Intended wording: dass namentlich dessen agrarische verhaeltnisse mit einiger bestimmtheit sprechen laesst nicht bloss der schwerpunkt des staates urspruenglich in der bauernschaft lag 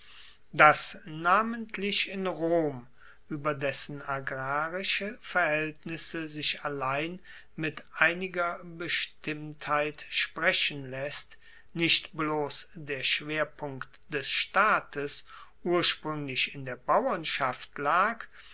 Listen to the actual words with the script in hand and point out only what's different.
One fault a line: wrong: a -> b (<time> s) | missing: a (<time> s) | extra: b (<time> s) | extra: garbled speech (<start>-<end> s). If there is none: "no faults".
extra: in rom ueber (2.1 s)
extra: sich allein (6.3 s)